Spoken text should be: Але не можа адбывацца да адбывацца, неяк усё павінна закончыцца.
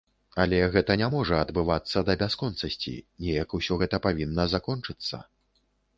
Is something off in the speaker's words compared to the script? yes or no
yes